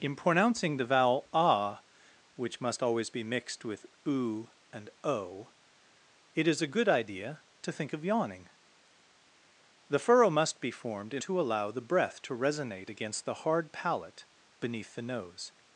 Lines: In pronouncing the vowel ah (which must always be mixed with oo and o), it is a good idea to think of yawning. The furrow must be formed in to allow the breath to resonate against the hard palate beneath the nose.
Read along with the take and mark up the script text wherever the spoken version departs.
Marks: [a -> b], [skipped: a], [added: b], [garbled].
In pronouncing the vowel ah (which must always be mixed with oo and o), it is a good idea to think of yawning. The furrow must be formed in to allow the breath to resonate against the hard palate beneath the nose.